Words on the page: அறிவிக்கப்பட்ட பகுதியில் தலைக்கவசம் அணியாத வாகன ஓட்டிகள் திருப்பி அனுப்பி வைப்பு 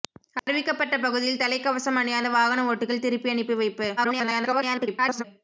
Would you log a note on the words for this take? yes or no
yes